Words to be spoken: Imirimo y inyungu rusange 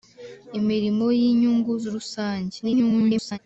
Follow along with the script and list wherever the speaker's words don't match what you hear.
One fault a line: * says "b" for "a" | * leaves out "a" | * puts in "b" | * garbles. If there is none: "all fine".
* garbles